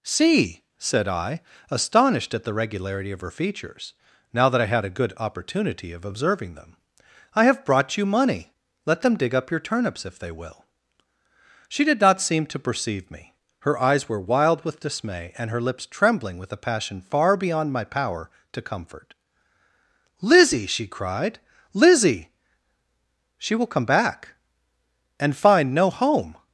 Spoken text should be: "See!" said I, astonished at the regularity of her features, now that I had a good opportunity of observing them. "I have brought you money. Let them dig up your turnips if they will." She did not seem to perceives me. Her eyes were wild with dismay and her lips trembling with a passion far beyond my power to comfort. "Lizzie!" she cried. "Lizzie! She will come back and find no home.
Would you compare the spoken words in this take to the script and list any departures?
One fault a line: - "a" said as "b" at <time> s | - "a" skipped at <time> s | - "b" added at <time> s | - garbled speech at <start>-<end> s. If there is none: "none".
- "perceives" said as "perceive" at 12.7 s